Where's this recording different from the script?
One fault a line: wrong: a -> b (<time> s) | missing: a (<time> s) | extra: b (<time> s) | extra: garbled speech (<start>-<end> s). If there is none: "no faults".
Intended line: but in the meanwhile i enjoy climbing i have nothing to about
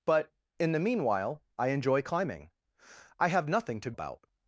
no faults